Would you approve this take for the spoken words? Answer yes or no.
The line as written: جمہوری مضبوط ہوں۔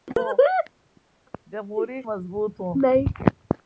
yes